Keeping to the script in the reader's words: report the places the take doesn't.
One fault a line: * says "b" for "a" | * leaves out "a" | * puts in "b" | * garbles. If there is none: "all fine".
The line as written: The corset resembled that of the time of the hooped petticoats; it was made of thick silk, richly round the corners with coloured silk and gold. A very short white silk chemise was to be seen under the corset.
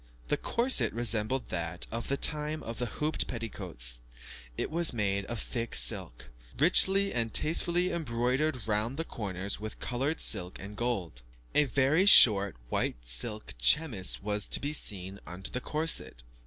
* puts in "and tastefully embroidered"